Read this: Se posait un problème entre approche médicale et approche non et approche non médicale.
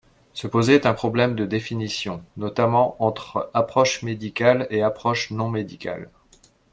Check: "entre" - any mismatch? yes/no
yes